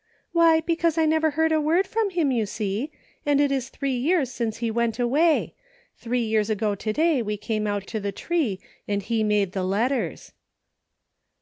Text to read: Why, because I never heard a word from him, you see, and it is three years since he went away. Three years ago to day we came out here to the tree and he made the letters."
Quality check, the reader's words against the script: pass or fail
fail